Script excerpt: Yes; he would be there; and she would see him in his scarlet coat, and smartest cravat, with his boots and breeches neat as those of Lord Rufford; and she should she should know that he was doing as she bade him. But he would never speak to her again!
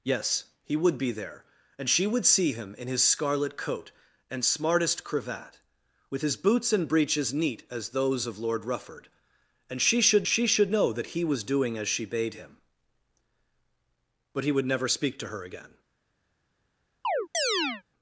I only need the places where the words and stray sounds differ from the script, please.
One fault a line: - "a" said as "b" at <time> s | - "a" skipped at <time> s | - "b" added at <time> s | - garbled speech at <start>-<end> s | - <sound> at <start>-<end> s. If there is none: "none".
- chirp at 17.0-17.8 s